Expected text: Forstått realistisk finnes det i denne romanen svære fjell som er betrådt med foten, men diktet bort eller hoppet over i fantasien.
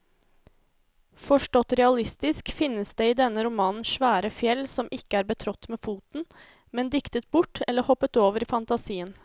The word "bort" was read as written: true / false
true